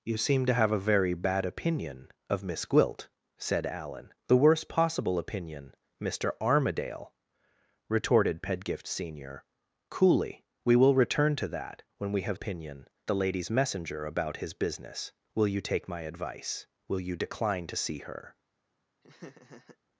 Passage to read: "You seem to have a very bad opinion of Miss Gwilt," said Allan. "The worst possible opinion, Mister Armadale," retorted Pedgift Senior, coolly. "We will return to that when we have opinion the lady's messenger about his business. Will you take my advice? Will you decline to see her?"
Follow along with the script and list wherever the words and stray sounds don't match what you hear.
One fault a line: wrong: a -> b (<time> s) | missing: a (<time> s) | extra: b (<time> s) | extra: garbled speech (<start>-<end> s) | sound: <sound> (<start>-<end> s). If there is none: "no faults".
sound: laugh (19.0-19.8 s)